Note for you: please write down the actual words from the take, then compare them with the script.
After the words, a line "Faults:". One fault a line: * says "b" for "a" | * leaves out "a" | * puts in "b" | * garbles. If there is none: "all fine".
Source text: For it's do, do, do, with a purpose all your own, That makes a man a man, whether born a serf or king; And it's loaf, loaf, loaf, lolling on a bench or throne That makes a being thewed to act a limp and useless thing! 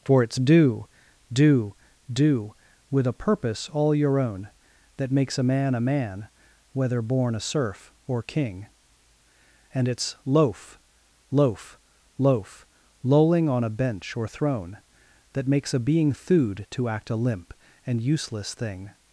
For it's do, do, do, with a purpose all your own, That makes a man a man, whether born a serf or king; And it's loaf, loaf, loaf, lolling on a bench or throne That makes a being thewed to act a limp and useless thing!
Faults:
all fine